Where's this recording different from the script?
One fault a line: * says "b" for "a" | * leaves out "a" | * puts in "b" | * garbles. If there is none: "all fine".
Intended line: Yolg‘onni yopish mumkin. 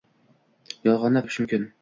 all fine